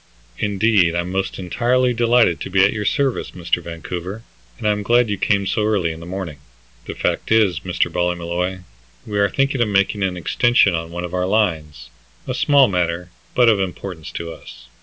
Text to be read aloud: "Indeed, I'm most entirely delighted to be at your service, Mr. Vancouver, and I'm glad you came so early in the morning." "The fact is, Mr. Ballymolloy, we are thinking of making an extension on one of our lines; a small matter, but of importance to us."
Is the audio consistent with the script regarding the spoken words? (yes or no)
yes